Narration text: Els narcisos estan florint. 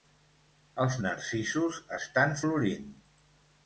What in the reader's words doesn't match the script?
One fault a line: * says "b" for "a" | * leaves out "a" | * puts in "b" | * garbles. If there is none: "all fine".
all fine